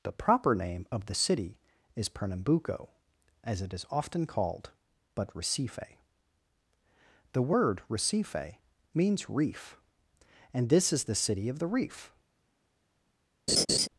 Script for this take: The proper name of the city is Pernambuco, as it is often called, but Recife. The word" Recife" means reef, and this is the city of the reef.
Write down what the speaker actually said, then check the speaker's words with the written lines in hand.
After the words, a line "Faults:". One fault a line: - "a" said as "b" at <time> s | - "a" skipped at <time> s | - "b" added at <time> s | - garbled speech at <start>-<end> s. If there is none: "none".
The proper name of the city is Pernambuco, as it is often called, but Recife. The word" Recife" means reef, and this is the city of the reef.
Faults:
none